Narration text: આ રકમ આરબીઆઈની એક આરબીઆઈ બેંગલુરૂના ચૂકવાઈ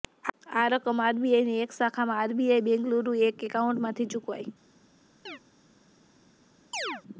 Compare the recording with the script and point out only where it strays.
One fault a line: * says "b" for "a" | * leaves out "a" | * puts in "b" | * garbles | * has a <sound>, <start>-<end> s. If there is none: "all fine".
* puts in "શાખામાં"
* puts in "એક એકાઉન્ટમાંથી"
* has a chirp, 5.3-5.4 s
* has a chirp, 6.7-7.0 s